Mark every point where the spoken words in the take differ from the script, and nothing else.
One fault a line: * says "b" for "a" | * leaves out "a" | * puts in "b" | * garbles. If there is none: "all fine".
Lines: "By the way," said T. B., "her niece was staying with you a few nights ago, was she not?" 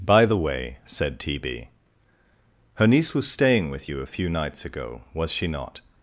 all fine